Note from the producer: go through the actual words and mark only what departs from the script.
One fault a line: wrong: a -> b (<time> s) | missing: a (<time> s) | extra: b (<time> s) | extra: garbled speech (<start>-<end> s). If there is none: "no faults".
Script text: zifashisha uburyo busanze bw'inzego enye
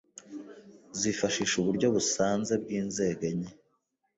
no faults